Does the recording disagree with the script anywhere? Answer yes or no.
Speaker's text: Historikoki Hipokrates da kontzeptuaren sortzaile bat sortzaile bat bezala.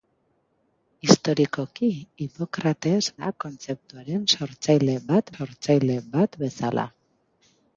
no